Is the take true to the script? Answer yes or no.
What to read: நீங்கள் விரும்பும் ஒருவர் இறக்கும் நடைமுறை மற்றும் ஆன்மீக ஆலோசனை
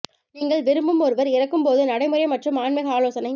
no